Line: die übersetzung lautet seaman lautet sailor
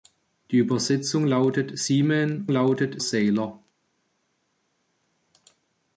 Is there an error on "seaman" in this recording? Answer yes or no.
no